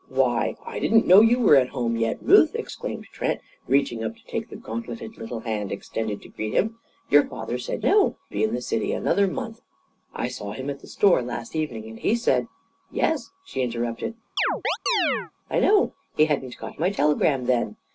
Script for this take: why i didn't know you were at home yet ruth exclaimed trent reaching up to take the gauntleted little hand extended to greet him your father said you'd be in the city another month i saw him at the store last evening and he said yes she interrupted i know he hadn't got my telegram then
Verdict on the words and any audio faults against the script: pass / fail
fail